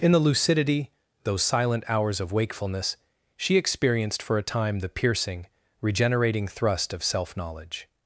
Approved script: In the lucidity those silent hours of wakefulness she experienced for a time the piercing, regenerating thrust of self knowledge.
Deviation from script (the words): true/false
false